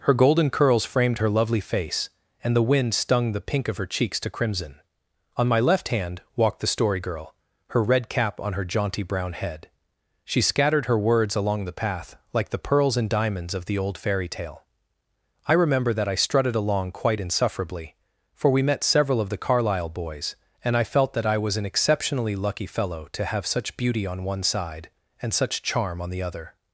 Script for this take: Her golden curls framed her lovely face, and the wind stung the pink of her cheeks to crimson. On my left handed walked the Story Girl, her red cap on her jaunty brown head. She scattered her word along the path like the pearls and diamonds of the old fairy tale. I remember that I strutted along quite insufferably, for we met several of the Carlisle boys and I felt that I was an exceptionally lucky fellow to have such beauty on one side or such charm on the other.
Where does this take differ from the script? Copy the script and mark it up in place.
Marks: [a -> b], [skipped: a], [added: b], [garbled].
Her golden curls framed her lovely face, and the wind stung the pink of her cheeks to crimson. On my left [handed -> hand] walked the Story Girl, her red cap on her jaunty brown head. She scattered her [word -> words] along the path like the pearls and diamonds of the old fairy tale. I remember that I strutted along quite insufferably, for we met several of the Carlisle boys and I felt that I was an exceptionally lucky fellow to have such beauty on one side [or -> and] such charm on the other.